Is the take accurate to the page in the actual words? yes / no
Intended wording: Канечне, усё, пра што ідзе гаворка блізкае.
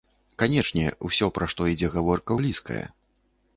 yes